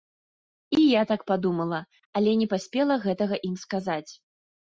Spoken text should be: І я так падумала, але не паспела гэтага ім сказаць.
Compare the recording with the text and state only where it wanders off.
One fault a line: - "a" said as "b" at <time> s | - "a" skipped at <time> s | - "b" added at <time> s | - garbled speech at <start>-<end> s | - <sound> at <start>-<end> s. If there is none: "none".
none